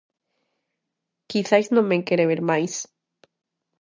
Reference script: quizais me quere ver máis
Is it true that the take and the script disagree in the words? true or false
true